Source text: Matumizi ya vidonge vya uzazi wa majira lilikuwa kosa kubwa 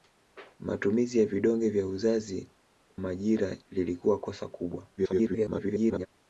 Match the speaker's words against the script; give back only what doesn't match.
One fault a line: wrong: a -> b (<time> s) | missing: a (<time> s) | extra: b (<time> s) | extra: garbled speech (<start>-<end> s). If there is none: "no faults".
missing: wa (2.5 s)
extra: garbled speech (5.0-6.1 s)